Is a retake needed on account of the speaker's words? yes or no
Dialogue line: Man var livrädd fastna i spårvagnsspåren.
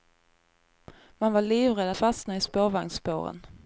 no